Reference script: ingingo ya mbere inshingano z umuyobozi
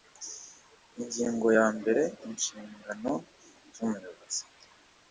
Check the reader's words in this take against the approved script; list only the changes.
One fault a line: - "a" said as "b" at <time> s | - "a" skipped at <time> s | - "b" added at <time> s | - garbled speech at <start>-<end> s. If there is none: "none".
none